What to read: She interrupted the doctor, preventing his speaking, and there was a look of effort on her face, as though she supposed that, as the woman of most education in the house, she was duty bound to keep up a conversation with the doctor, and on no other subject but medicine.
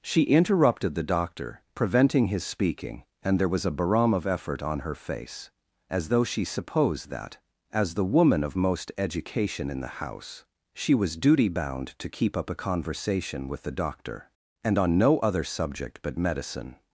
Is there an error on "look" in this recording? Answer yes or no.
yes